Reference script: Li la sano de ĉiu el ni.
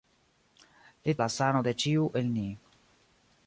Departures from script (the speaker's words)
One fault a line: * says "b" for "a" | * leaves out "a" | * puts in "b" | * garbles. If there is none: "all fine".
all fine